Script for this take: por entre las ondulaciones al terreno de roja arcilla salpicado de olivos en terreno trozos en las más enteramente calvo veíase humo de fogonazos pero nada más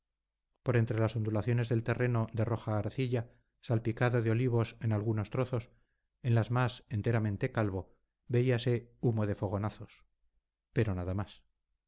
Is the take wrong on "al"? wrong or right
wrong